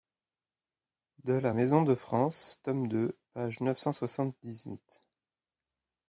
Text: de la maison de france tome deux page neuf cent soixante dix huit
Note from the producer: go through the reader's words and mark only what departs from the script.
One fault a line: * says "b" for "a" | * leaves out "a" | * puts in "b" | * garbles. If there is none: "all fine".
all fine